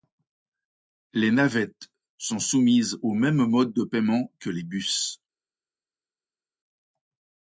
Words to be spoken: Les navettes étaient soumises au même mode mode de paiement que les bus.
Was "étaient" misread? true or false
true